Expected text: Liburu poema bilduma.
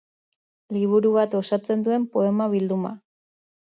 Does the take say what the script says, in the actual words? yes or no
no